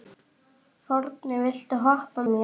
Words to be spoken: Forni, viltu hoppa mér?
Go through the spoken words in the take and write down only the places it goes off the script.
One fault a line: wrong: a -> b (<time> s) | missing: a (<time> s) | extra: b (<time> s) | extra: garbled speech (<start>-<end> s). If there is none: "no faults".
no faults